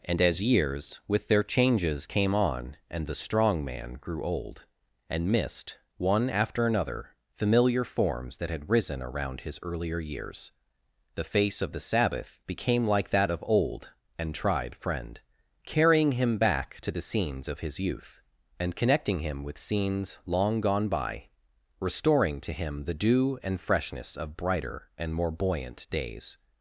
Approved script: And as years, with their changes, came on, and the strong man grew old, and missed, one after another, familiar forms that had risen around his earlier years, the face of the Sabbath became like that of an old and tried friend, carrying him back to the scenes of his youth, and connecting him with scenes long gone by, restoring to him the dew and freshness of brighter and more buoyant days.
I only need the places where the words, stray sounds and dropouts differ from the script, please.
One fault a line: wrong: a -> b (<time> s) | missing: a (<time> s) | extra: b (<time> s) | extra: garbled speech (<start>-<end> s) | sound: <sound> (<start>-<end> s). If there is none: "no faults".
missing: an (13.4 s)